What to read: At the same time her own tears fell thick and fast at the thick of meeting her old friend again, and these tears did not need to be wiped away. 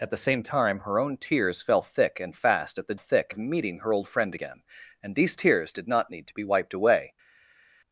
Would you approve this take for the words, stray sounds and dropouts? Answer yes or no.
yes